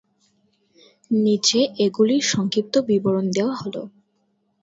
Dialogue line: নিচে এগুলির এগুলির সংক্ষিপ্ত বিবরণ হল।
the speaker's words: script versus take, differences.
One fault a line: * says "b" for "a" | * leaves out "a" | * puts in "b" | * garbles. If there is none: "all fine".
* leaves out "এগুলির"
* puts in "দেওয়া"